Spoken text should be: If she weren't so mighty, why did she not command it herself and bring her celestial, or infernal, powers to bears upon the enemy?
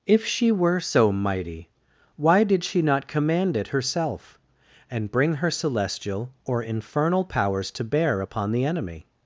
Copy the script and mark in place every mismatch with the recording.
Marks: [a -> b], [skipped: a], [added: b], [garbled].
If she [weren't -> were] so mighty, why did she not command it herself and bring her celestial, or infernal, powers to [bears -> bear] upon the enemy?